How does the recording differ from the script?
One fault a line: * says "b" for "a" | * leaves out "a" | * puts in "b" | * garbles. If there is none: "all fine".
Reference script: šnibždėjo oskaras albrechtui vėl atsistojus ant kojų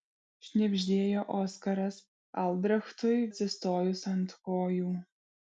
* leaves out "vėl"